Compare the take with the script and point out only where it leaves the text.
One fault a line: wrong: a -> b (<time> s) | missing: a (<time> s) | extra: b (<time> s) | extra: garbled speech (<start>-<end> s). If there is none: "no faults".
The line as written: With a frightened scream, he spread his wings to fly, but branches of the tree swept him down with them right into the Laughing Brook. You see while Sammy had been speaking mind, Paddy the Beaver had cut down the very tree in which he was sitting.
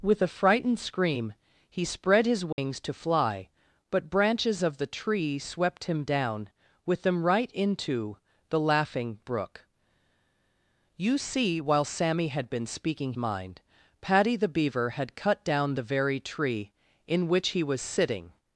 no faults